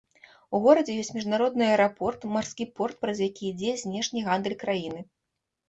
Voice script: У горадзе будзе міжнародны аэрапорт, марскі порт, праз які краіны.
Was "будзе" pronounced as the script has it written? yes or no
no